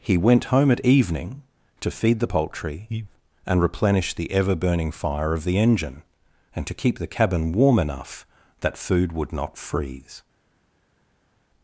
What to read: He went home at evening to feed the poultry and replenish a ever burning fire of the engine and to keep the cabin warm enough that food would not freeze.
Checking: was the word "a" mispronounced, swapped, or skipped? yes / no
yes